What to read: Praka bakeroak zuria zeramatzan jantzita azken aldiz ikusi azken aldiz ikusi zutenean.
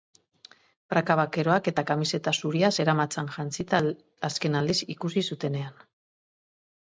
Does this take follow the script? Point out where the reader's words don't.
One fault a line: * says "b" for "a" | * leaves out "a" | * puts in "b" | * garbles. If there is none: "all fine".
* puts in "eta kamiseta"
* leaves out "azken aldiz ikusi"